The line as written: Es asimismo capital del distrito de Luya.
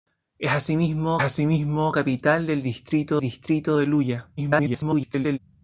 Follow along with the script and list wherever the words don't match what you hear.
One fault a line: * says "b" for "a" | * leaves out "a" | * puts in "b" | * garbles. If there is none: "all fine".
* puts in "asimismo"
* puts in "distrito"
* garbles